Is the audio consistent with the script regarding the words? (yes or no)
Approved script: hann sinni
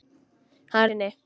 yes